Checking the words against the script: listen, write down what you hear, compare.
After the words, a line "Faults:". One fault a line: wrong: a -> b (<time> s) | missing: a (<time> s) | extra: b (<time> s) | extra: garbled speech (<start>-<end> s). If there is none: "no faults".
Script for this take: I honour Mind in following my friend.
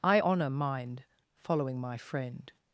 I honour Mind following my friend.
Faults:
missing: in (1.0 s)